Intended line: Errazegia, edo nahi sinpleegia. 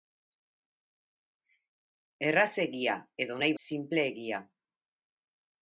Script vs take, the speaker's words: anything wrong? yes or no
no